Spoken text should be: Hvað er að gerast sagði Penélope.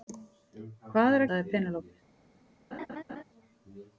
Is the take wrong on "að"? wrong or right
wrong